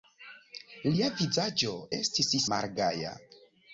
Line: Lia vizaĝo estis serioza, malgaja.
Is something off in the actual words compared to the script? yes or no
yes